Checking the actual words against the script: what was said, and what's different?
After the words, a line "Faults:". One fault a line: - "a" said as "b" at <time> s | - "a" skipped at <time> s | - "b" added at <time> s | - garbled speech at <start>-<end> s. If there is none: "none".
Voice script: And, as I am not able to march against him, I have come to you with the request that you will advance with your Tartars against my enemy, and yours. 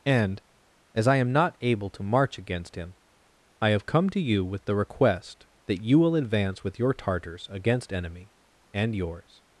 And, as I am not able to march against him, I have come to you with the request that you will advance with your Tartars against enemy, and yours.
Faults:
- "my" skipped at 7.9 s